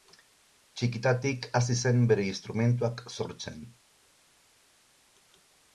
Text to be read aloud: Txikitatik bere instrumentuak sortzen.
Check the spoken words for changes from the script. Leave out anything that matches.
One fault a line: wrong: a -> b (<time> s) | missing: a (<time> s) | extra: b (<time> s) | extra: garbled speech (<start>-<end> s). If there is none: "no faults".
extra: hasi zen (1.6 s)